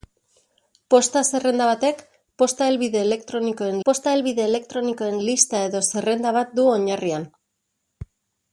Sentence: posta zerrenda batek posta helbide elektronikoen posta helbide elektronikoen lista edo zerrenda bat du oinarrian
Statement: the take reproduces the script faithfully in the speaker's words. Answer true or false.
true